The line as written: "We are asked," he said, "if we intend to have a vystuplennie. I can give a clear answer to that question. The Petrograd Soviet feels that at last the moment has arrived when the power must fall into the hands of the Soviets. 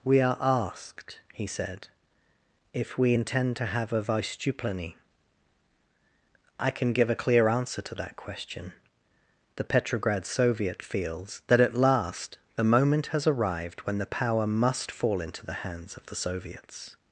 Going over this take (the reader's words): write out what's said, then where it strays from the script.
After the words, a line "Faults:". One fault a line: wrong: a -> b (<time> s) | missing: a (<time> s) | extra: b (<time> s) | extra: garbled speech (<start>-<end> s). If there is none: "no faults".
"We are asked," he said, "if we intend to have a vystuplennie. I can give a clear answer to that question. The Petrograd Soviet feels that at last the moment has arrived when the power must fall into the hands of the Soviets.
Faults:
no faults